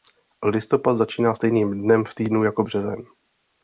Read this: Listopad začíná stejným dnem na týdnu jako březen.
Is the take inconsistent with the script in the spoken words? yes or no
yes